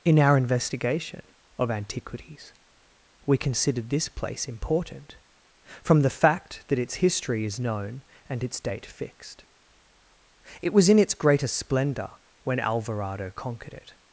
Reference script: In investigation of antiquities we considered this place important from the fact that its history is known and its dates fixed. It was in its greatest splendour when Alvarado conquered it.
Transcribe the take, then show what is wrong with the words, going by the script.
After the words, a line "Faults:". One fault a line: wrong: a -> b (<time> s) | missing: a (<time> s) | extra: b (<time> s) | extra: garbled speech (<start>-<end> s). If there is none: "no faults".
In our investigation of antiquities we considered this place important from the fact that its history is known and its date fixed. It was in its greatest splendour when Alvarado conquered it.
Faults:
extra: our (0.2 s)
wrong: dates -> date (8.6 s)